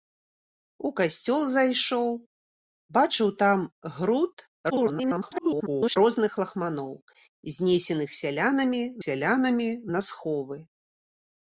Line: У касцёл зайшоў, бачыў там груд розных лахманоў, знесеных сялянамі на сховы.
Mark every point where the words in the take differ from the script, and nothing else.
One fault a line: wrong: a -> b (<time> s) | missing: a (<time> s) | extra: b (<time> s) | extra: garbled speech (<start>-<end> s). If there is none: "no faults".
extra: garbled speech (4.7-6.0 s)
extra: сялянамі (9.1 s)